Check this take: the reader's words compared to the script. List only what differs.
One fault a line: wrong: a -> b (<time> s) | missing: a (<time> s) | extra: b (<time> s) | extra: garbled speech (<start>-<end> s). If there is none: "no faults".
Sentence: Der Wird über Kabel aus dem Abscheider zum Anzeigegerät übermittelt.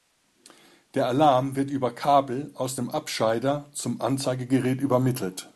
extra: Alarm (1.1 s)